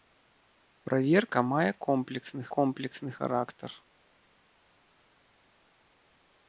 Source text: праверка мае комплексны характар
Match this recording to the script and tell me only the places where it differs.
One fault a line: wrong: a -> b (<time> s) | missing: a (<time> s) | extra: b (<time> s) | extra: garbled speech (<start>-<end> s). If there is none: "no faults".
extra: комплексны (2.6 s)